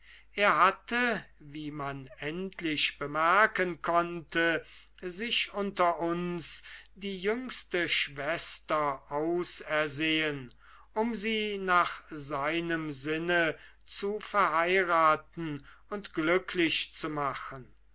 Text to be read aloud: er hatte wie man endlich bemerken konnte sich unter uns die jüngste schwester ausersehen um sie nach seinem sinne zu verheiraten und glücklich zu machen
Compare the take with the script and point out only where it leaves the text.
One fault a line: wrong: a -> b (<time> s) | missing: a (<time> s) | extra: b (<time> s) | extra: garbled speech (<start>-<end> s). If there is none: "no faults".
no faults